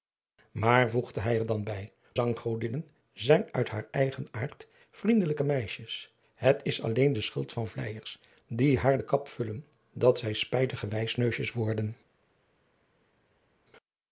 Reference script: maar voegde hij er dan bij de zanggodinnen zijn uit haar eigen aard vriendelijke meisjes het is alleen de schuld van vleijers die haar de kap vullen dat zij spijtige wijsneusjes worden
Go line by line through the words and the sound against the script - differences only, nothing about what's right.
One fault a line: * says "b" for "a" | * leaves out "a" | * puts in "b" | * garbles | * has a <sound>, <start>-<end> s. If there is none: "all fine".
* leaves out "de"